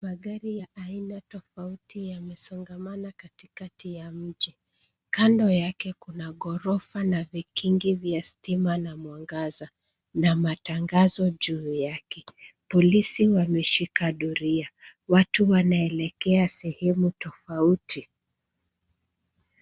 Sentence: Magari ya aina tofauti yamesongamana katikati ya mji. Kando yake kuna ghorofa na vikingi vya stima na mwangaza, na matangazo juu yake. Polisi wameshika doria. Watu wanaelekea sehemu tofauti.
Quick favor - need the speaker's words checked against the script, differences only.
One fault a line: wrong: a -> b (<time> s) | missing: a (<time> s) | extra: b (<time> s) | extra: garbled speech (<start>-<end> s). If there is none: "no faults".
no faults